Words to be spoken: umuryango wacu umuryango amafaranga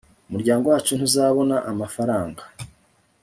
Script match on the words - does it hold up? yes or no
no